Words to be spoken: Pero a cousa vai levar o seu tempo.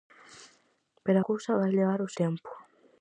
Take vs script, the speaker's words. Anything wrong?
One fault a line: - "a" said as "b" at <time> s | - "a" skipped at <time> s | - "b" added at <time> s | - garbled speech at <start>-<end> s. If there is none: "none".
- "a" skipped at 1.2 s
- "seu" skipped at 2.1 s